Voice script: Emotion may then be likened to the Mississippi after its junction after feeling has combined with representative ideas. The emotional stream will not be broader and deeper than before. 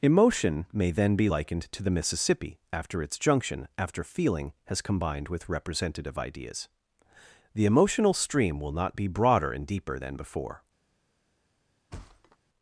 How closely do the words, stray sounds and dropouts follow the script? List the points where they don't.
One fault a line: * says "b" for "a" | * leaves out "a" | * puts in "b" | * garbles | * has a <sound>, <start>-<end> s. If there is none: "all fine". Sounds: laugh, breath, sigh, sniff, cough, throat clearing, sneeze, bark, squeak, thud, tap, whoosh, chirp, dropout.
* has a thud, 11.9-12.4 s